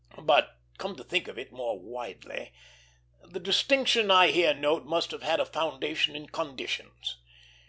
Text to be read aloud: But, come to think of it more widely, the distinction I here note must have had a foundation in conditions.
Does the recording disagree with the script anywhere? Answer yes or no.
no